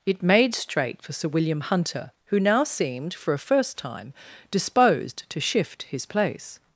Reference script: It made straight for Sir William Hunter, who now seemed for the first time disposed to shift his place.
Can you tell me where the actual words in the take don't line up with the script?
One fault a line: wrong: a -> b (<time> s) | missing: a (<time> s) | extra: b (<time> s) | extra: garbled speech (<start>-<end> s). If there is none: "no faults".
wrong: the -> a (3.3 s)